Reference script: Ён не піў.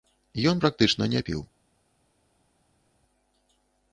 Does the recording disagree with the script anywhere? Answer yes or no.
yes